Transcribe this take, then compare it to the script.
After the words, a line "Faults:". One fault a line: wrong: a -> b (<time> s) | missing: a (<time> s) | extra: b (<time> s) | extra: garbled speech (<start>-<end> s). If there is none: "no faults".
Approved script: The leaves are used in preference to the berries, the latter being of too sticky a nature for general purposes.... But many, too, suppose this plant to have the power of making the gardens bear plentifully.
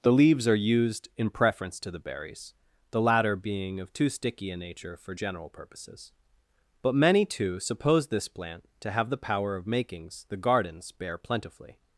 The leaves are used in preference to the berries, the latter being of too sticky a nature for general purposes.... But many, too, suppose this plant to have the power of makings the gardens bear plentifully.
Faults:
wrong: making -> makings (9.7 s)